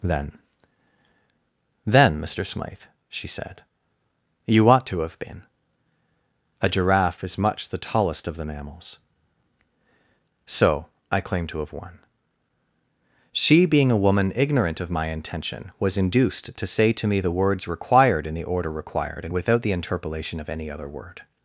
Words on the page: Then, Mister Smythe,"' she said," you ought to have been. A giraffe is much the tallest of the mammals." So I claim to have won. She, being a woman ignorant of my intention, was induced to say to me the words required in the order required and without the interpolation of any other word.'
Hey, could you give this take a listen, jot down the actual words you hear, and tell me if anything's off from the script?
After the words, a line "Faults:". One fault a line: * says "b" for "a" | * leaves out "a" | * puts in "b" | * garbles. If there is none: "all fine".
Then Then, Mister Smythe,"' she said," you ought to have been. A giraffe is much the tallest of the mammals." So I claim to have won. She, being a woman ignorant of my intention, was induced to say to me the words required in the order required and without the interpolation of any other word.'
Faults:
* puts in "Then"